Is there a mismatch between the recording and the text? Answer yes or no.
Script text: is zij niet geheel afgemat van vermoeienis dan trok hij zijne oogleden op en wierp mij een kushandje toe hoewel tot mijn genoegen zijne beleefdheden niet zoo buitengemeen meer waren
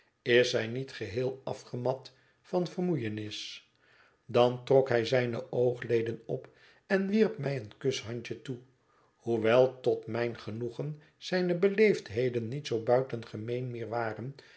no